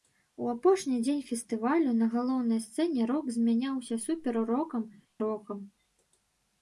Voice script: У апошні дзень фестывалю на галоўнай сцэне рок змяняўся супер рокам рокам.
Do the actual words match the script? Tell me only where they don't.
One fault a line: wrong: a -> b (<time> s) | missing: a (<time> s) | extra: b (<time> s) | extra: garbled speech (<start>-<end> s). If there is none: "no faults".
no faults